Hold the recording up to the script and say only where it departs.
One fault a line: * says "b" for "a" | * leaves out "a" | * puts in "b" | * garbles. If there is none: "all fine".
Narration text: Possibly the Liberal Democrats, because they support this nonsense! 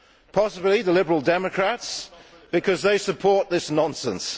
all fine